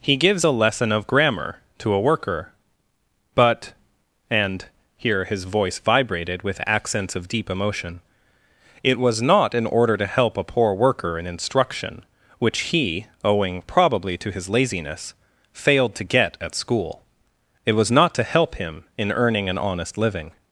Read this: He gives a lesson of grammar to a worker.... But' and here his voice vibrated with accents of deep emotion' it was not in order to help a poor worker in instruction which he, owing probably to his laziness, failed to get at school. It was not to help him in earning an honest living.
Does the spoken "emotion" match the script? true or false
true